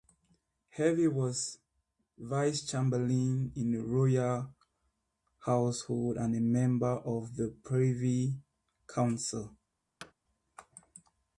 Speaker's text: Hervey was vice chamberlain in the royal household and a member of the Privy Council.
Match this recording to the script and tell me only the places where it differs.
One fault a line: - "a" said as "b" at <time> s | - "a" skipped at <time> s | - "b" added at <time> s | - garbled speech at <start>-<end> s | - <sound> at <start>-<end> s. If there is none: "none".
- thud at 10.0-10.1 s